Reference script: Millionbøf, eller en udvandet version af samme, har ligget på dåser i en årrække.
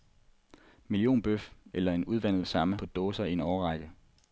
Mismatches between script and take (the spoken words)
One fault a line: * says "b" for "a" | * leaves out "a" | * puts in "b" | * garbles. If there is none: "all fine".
* leaves out "version"
* leaves out "har ligget"